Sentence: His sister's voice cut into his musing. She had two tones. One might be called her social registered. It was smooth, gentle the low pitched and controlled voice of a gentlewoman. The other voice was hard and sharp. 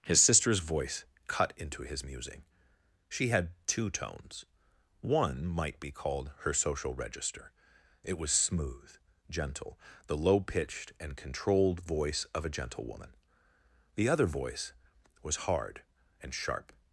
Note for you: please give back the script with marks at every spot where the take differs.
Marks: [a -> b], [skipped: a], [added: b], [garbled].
His sister's voice cut into his musing. She had two tones. One might be called her social [registered. -> register] It was smooth, gentle the low pitched and controlled voice of a gentlewoman. The other voice was hard and sharp.